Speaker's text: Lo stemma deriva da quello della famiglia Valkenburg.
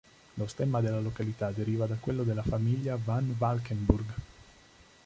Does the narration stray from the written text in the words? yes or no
yes